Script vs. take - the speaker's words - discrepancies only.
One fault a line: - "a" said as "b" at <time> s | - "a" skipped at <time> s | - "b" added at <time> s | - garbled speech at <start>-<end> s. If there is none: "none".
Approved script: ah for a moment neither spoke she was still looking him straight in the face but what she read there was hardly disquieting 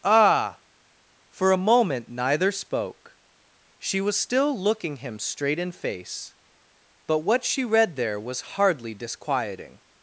- "the" skipped at 5.7 s